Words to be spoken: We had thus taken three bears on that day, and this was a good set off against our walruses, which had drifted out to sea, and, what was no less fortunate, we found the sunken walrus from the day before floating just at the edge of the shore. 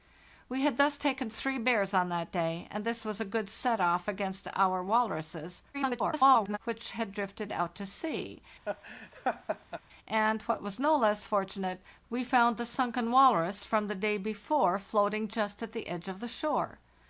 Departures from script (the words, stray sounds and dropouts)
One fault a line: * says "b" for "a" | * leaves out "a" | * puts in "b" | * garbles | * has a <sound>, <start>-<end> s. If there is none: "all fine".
* garbles
* has a laugh, 8.6-9.8 s